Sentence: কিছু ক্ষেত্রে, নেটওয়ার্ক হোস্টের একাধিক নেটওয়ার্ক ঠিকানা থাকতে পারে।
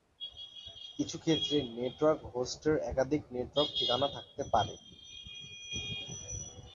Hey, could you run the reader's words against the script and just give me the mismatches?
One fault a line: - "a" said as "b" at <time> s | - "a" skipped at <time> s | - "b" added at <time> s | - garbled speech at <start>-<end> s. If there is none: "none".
none